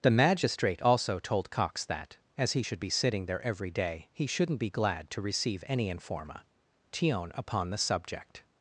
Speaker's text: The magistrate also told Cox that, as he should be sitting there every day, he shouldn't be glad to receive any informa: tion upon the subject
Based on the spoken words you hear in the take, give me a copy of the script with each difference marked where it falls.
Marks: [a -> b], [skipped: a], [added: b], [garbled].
The magistrate also told Cox that, as he should be sitting there every day, he shouldn't be glad to receive any informa: tion upon the subject